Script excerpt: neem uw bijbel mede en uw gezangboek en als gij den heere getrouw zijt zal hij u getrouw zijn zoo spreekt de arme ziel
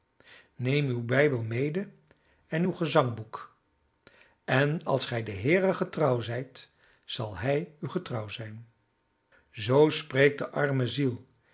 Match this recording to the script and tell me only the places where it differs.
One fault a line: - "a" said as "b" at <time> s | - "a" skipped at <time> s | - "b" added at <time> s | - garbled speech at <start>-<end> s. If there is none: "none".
none